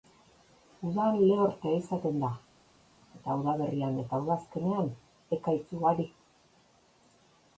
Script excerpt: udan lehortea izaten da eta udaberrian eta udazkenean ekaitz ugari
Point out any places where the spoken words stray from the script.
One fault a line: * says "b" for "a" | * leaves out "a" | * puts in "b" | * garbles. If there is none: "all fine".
all fine